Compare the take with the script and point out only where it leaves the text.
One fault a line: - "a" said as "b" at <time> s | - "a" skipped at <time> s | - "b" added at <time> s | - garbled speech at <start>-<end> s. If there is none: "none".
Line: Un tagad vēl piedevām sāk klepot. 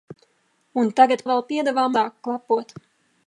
none